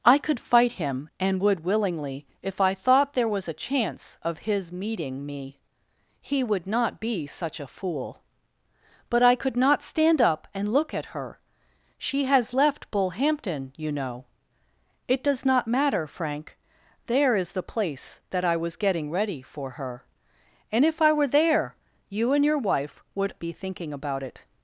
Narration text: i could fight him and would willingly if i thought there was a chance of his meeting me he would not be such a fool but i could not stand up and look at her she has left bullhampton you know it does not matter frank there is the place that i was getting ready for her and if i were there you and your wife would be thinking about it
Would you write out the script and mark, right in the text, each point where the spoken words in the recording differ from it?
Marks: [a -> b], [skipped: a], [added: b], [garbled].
i could fight him and would willingly if i thought there was a chance of his meeting me he would not be such a fool but i could not stand up and look at her she has left bullhampton you know it does not matter frank there is the place that i was getting ready for her and if i were there you and your wife would be thinking about it